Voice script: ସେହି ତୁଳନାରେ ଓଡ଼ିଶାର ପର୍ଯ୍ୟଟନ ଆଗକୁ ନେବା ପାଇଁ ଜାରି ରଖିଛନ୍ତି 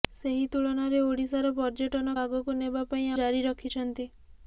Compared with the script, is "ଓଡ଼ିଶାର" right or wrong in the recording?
right